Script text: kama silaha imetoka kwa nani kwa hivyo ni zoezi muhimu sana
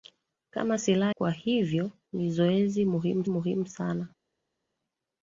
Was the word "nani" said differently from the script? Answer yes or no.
yes